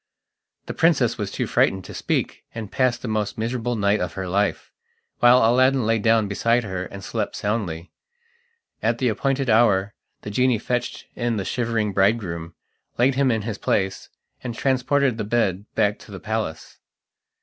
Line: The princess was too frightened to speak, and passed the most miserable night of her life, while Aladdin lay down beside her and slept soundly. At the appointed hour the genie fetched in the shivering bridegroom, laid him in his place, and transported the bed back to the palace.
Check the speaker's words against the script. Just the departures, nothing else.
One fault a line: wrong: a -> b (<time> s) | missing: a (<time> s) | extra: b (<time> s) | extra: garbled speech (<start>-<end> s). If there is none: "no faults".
no faults